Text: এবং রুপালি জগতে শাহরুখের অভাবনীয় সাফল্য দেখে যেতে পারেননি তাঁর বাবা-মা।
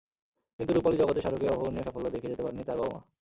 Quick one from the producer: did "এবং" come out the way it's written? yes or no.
no